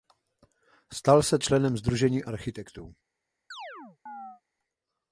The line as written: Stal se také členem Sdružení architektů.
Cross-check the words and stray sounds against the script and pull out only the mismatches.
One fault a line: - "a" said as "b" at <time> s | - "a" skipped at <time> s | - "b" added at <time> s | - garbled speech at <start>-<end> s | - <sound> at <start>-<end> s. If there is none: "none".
- "také" skipped at 1.4 s
- chirp at 3.5-4.4 s